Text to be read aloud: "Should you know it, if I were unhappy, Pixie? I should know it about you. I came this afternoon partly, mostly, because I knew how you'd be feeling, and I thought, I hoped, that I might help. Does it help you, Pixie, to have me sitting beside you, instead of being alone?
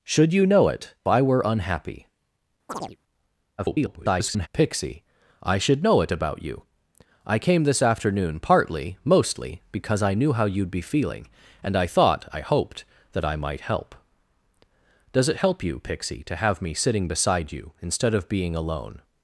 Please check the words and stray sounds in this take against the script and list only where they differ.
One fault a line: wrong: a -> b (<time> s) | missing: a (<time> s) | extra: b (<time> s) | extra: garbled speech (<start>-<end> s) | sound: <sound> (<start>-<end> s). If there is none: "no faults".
missing: if (0.9 s)
sound: chirp (2.7-3.0 s)
extra: garbled speech (3.6-4.5 s)